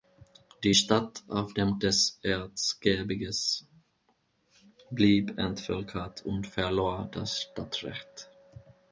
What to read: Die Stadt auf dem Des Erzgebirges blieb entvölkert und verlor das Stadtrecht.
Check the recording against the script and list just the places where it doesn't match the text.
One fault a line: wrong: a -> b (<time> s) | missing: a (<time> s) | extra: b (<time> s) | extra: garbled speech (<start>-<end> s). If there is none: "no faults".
no faults